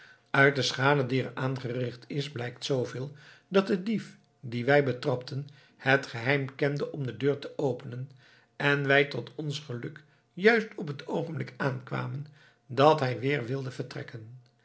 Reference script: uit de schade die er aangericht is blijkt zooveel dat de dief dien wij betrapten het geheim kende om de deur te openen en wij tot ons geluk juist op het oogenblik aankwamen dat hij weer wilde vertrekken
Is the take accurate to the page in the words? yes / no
yes